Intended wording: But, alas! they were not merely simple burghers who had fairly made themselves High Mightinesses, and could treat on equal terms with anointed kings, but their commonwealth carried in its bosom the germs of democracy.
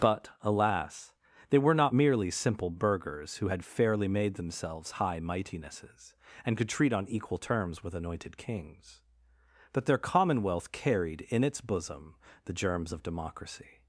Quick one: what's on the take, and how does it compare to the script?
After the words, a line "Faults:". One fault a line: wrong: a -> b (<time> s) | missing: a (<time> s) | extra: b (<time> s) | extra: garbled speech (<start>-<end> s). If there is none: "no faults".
But, alas! they were not merely simple burghers who had fairly made themselves High Mightinesses, and could treat on equal terms with anointed kings, but their commonwealth carried in its bosom the germs of democracy.
Faults:
no faults